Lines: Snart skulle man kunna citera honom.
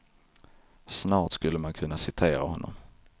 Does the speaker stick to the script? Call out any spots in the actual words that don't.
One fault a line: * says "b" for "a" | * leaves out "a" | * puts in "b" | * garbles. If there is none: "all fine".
all fine